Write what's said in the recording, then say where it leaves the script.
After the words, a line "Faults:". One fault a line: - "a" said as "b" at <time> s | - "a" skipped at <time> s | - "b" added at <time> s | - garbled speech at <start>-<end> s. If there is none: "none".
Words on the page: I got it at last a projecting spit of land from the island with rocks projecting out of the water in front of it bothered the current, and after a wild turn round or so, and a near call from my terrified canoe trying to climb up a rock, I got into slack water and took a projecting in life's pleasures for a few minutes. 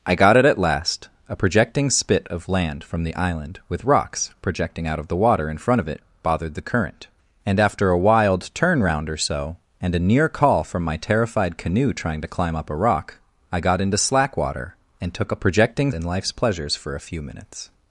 I got it at last a projecting spit of land from the island with rocks projecting out of the water in front of it bothered the current, and after a wild turn round or so, and a near call from my terrified canoe trying to climb up a rock, I got into slack water and took a projecting in life's pleasures for a few minutes.
Faults:
none